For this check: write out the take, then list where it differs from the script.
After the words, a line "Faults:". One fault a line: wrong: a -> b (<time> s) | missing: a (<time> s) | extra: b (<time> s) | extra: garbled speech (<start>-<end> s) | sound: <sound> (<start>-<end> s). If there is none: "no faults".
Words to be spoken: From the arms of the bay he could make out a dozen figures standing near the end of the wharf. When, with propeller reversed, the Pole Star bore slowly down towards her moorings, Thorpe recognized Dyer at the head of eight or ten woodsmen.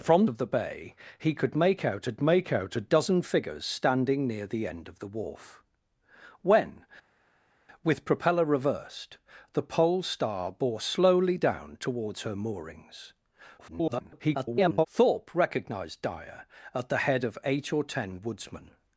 From of the bay he could make out a make out a dozen figures standing near the end of the wharf. When, with propeller reversed, the Pole Star bore slowly down towards her moorings, [garbled] Thorpe recognized Dyer at the head of eight or ten woodsmen.
Faults:
missing: the arms (0.2 s)
extra: make out a (2.2 s)
extra: garbled speech (13.6-14.9 s)